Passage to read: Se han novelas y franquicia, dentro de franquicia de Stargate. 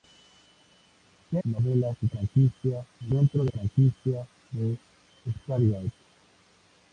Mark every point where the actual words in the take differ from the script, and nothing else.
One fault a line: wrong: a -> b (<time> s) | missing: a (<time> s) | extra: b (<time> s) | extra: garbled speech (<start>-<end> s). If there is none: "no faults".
no faults